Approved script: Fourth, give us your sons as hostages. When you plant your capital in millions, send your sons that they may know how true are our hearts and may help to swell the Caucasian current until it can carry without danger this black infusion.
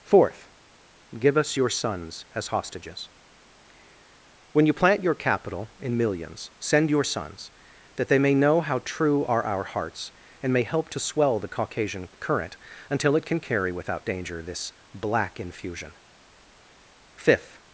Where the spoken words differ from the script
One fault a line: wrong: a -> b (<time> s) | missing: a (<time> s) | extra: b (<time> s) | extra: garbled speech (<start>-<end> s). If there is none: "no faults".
extra: Fifth (17.1 s)